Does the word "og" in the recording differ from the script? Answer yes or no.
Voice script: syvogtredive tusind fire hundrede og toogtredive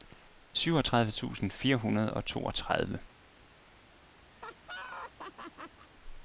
no